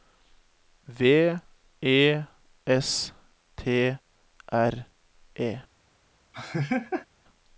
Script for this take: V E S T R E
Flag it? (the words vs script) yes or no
no